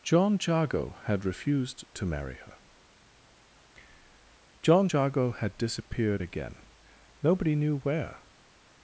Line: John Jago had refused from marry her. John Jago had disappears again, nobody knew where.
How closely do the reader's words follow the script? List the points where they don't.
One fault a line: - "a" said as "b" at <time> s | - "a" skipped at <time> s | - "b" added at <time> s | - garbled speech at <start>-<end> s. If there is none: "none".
- "from" said as "to" at 1.9 s
- "disappears" said as "disappeared" at 5.6 s